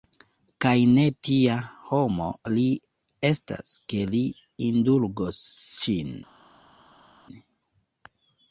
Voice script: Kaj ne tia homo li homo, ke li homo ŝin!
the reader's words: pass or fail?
fail